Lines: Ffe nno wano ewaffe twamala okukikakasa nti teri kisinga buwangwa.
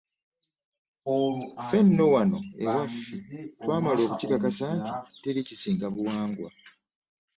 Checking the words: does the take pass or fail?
pass